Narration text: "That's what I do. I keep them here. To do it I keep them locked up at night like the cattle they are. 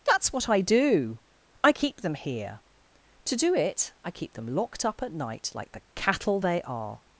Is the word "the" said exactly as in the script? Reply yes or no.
yes